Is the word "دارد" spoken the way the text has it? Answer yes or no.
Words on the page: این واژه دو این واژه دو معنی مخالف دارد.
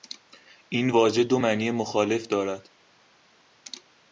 yes